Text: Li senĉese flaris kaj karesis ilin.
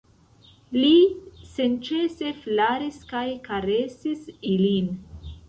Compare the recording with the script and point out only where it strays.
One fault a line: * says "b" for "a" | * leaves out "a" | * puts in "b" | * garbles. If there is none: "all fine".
all fine